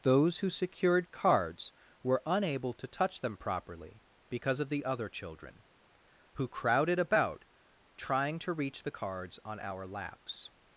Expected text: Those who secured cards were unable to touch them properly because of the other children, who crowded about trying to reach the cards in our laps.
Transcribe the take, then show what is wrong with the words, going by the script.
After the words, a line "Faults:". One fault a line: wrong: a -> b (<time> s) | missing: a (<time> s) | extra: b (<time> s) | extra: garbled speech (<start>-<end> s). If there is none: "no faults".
Those who secured cards were unable to touch them properly because of the other children, who crowded about trying to reach the cards on our laps.
Faults:
wrong: in -> on (9.4 s)